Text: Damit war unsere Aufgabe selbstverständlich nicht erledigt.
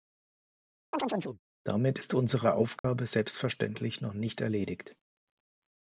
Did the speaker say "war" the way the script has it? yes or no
no